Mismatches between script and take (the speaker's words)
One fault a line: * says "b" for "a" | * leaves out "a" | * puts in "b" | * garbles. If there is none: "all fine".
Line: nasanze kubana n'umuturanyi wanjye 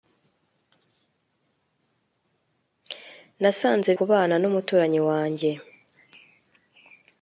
all fine